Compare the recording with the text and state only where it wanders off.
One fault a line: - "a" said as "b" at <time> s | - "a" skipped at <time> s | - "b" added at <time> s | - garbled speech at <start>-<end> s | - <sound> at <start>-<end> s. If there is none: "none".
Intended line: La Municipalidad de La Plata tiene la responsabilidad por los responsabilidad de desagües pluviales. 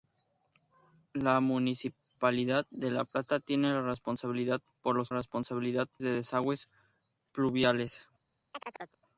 - chirp at 8.5-9.0 s